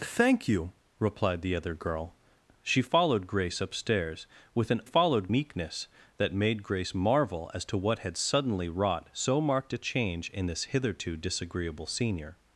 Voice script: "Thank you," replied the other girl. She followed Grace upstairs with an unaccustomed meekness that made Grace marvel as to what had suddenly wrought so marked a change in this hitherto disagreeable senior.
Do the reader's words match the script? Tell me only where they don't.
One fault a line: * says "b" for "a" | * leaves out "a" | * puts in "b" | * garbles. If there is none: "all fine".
* says "followed" for "unaccustomed"